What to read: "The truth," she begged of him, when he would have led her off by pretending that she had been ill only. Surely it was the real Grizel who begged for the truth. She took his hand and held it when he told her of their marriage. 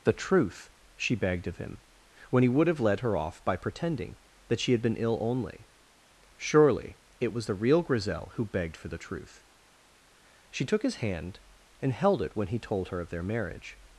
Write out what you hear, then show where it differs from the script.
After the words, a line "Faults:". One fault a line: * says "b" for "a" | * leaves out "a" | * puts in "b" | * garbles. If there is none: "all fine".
"The truth," she begged of him, when he would have led her off by pretending that she had been ill only. Surely it was the real Grizel who begged for the truth. She took his hand and held it when he told her of their marriage.
Faults:
all fine